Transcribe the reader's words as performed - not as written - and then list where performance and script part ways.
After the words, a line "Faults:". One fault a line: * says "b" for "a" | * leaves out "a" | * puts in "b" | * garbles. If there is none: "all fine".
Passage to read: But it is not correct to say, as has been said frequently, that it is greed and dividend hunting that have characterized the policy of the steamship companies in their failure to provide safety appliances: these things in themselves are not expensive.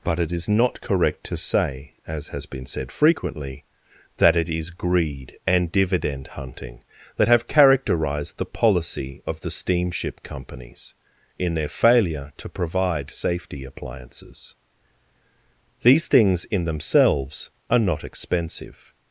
But it is not correct to say, as has been said frequently, that it is greed and dividend hunting that have characterized the policy of the steamship companies in their failure to provide safety appliances: these things in themselves are not expensive.
Faults:
all fine